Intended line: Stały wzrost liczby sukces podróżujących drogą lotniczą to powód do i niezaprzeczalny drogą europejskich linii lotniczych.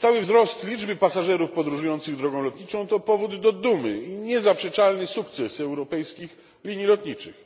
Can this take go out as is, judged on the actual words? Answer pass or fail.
fail